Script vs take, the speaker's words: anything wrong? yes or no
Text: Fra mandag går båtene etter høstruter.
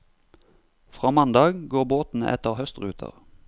no